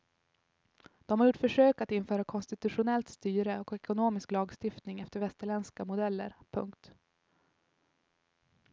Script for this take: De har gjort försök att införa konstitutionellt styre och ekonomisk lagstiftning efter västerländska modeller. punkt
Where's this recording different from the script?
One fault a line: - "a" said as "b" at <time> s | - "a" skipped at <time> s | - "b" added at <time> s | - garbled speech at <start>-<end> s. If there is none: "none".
none